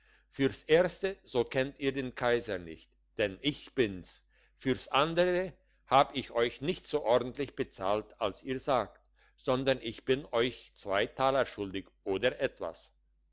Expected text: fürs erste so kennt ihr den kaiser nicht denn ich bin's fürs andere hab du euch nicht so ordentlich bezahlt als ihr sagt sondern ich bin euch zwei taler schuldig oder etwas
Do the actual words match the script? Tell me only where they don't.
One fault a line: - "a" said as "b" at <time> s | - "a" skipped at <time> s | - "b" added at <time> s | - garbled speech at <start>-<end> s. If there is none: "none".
- "du" said as "ich" at 6.2 s